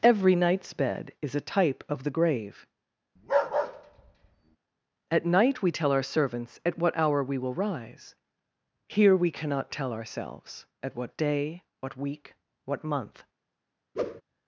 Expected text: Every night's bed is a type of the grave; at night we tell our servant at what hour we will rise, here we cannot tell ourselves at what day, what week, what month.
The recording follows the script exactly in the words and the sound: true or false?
false